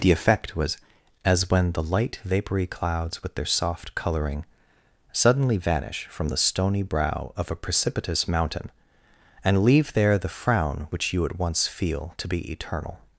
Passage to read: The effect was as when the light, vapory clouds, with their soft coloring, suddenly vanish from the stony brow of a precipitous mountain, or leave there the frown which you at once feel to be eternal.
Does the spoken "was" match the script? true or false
true